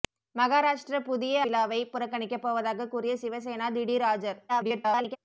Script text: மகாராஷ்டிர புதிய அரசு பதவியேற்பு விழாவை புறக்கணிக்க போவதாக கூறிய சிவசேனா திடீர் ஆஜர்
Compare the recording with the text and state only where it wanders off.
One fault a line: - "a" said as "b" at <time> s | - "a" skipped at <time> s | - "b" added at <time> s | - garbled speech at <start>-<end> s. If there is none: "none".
- "அரசு பதவியேற்பு" skipped at 1.4 s
- garbled speech at 4.5-5.2 s